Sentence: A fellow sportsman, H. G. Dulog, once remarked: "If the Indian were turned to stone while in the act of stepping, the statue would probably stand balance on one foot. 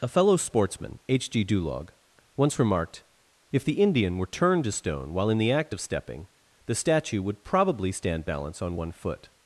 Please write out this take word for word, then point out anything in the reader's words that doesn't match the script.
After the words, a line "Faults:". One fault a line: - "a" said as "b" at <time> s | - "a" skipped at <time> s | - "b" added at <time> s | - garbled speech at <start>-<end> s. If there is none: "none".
A fellow sportsman, H. G. Dulog, once remarked: "If the Indian were turned to stone while in the act of stepping, the statue would probably stand balance on one foot.
Faults:
none